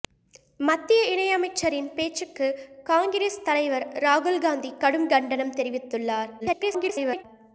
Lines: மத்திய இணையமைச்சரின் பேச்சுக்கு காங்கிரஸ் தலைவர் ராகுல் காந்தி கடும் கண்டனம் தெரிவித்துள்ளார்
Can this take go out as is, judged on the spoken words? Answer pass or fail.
fail